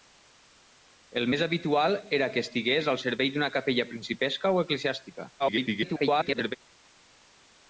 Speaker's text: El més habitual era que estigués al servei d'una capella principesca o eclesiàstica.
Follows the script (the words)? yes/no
no